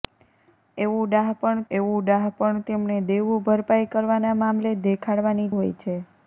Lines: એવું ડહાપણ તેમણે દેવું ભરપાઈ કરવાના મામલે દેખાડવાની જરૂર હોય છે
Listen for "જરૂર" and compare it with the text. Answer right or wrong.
wrong